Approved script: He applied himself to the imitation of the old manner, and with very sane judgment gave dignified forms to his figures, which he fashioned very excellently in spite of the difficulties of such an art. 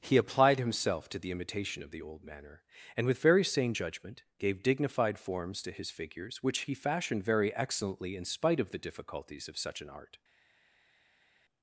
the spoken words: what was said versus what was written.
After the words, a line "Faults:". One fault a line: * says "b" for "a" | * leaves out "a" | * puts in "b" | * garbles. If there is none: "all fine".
He applied himself to the imitation of the old manner, and with very sane judgment gave dignified forms to his figures, which he fashioned very excellently in spite of the difficulties of such an art.
Faults:
all fine